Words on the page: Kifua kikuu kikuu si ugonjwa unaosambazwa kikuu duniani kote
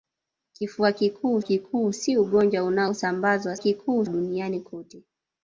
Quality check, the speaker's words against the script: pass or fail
pass